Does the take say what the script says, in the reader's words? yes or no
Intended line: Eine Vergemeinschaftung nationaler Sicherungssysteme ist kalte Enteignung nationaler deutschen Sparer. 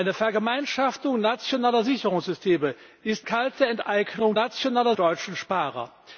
yes